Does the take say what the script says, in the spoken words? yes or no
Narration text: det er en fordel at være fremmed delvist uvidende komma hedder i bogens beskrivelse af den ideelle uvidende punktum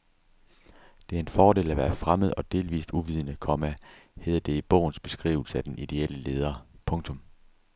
no